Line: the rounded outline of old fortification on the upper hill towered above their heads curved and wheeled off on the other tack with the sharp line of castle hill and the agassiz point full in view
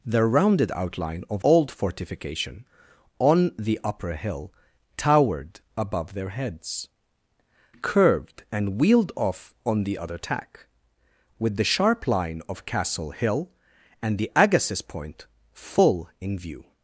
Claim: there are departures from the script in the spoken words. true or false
false